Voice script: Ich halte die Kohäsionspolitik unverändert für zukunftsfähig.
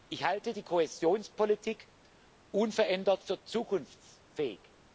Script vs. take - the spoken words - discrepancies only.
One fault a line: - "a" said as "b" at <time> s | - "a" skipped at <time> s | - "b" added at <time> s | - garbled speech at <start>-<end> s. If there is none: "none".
none